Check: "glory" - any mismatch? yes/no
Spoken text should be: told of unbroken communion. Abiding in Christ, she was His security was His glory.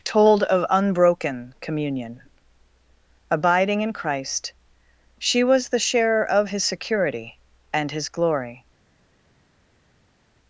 no